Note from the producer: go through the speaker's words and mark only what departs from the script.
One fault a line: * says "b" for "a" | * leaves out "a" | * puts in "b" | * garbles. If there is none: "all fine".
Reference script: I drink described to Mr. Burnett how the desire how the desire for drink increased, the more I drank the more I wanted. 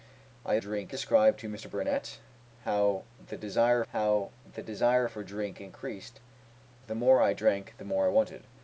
all fine